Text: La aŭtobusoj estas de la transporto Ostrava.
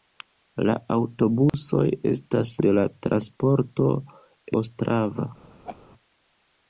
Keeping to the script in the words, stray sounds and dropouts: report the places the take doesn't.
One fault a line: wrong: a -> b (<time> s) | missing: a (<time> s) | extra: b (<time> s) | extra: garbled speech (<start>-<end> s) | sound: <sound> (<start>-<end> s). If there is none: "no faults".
sound: dropout (1.5-1.5 s)
sound: laugh (5.6-5.8 s)